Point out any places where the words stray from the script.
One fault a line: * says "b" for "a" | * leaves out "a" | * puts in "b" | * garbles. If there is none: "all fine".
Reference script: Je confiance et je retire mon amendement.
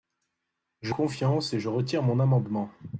all fine